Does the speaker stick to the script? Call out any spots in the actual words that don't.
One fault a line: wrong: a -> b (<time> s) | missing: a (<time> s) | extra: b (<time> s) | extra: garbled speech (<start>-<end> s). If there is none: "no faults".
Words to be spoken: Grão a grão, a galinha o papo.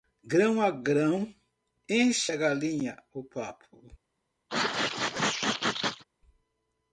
extra: enche (1.9 s)